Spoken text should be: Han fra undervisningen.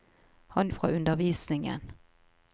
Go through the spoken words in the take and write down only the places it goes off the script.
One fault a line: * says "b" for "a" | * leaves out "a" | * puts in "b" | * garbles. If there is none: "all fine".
all fine